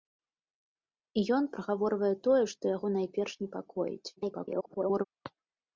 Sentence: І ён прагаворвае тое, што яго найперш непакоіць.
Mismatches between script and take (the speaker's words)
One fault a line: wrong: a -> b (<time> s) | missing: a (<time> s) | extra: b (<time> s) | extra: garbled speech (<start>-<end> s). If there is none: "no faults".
extra: garbled speech (4.2-5.0 s)